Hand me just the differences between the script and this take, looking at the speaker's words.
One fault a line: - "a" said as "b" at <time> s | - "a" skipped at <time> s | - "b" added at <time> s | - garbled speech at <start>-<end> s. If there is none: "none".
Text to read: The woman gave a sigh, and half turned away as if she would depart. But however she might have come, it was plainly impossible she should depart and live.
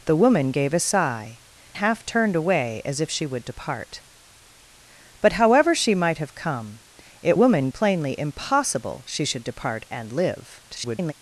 - "and" skipped at 1.4 s
- "was" said as "woman" at 7.3 s
- garbled speech at 10.7-11.1 s